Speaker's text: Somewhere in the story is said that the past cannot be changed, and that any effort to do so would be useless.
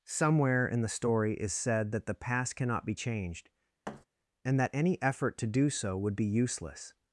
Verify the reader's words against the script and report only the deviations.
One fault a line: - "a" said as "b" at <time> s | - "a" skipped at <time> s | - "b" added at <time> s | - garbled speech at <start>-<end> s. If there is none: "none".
none